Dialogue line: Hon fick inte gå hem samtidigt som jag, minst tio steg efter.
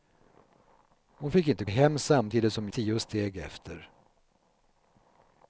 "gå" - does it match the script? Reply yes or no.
no